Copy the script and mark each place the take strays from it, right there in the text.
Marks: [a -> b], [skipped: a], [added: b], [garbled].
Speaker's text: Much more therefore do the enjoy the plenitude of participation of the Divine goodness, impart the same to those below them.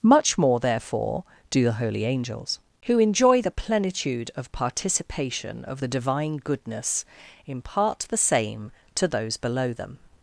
Much more therefore do the [added: holy angels who] enjoy the plenitude of participation of the Divine goodness, impart the same to those below them.